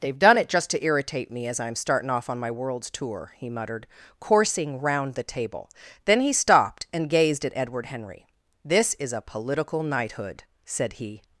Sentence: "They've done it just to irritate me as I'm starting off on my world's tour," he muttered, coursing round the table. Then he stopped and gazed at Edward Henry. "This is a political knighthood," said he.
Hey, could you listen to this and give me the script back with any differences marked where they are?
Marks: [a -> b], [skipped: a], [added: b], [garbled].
"They've done it just to irritate me as I'm starting off on my world's tour," he muttered, coursing round the table. Then he stopped and gazed at Edward Henry. "This is a political knighthood," said he.